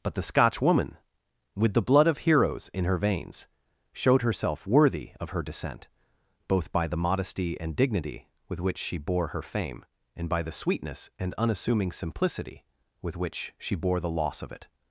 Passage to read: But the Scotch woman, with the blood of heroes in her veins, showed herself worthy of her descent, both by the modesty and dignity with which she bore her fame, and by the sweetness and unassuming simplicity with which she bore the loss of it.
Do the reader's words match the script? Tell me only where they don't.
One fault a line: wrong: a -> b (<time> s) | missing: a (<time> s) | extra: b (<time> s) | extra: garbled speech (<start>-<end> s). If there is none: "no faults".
no faults